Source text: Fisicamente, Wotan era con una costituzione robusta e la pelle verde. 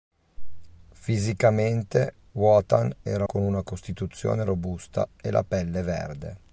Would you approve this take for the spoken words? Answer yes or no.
yes